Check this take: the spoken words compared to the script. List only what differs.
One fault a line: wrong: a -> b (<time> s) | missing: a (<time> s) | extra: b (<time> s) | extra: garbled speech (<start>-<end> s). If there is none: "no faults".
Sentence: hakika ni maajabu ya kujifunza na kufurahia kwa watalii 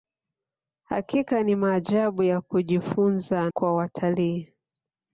missing: na kufurahia (3.5 s)